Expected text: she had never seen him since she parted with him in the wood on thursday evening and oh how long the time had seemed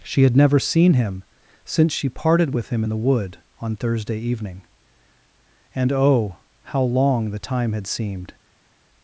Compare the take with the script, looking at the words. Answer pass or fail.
pass